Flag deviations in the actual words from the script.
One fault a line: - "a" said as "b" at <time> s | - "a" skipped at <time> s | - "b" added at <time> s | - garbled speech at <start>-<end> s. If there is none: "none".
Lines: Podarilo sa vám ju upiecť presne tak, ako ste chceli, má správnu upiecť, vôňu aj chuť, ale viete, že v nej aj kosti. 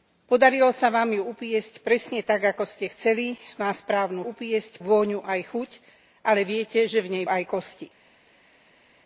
none